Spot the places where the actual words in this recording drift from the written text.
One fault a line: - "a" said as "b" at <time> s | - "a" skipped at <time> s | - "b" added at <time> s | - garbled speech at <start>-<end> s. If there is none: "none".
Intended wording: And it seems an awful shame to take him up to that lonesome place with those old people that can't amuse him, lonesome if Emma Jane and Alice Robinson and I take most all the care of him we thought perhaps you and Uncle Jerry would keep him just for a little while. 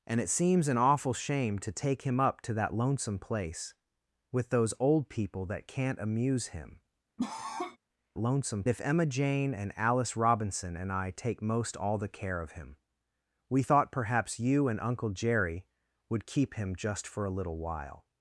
none